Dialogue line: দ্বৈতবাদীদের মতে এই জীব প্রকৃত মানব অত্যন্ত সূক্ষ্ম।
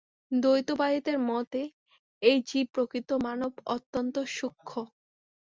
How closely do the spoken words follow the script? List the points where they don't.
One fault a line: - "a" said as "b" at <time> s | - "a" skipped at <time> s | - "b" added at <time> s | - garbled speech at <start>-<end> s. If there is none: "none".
none